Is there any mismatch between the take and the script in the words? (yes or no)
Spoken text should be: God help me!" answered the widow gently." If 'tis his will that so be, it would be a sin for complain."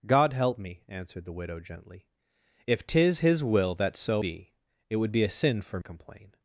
no